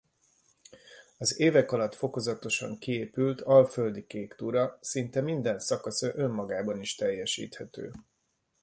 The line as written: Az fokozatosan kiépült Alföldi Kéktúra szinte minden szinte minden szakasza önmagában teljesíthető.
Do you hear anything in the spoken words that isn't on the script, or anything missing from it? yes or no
yes